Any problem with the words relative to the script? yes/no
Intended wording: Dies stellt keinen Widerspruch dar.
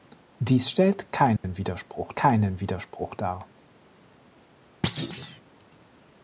yes